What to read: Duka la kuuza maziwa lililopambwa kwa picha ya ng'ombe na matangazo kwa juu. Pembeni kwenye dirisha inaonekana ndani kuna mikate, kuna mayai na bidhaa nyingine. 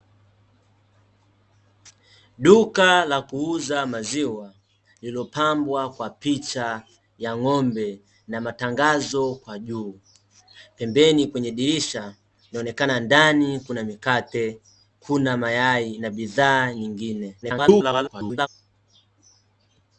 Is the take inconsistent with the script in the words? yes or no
yes